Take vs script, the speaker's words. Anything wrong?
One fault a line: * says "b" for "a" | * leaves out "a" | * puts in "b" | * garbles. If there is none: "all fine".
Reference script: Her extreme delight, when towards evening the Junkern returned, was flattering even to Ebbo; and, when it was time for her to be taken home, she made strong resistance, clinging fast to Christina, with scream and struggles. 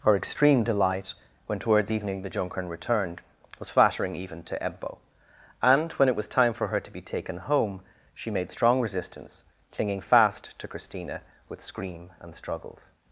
all fine